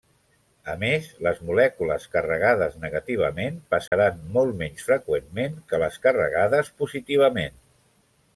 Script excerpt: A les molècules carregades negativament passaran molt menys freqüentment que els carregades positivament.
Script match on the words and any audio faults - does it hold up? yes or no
no